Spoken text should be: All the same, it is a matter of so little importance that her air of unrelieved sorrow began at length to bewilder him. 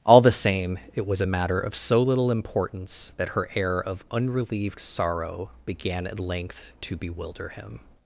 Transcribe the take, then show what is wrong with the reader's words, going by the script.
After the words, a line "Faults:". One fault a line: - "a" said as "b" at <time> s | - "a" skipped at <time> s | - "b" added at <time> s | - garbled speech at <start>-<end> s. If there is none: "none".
All the same, it was a matter of so little importance that her air of unrelieved sorrow began at length to bewilder him.
Faults:
- "is" said as "was" at 1.1 s